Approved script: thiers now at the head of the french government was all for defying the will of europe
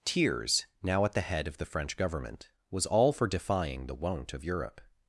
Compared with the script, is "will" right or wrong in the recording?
wrong